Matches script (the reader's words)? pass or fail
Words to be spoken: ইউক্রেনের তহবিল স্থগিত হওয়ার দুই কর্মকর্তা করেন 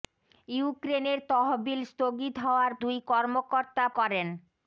pass